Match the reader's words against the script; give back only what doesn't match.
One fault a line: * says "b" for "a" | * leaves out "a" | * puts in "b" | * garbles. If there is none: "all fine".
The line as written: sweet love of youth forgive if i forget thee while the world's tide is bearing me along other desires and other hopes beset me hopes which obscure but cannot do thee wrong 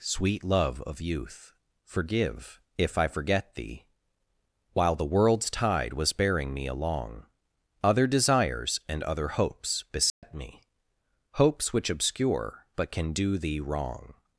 * says "was" for "is"
* says "can" for "cannot"